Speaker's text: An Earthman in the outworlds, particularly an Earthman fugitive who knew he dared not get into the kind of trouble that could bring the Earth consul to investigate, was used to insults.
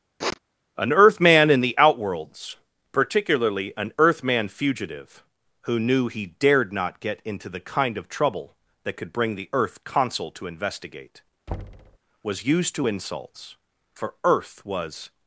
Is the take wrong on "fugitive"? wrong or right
right